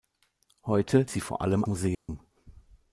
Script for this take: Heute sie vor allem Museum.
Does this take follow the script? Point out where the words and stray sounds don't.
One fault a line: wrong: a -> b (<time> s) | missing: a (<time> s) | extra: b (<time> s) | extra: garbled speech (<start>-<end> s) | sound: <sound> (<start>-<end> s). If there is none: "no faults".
sound: dropout (1.9-2.1 s)